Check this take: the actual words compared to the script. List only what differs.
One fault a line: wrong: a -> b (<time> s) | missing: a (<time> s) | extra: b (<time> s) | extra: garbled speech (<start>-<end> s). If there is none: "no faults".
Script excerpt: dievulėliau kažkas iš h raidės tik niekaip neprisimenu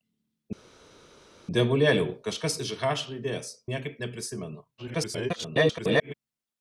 missing: tik (3.5 s)
extra: garbled speech (4.8-6.1 s)